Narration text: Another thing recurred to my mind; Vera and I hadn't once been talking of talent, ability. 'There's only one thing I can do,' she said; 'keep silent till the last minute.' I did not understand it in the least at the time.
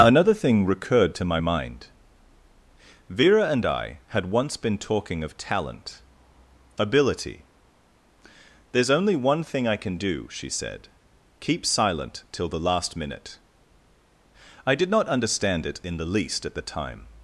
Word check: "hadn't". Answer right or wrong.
wrong